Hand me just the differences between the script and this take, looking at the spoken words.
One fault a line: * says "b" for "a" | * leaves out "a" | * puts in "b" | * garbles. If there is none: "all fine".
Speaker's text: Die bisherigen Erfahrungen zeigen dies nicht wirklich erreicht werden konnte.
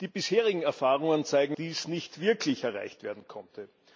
all fine